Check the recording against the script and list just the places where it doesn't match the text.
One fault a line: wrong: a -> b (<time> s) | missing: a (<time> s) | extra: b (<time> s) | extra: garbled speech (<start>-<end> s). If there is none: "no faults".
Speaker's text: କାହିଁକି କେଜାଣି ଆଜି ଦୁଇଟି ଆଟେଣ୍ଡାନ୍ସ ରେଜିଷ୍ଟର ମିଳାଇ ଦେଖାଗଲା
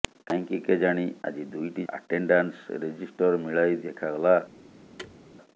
no faults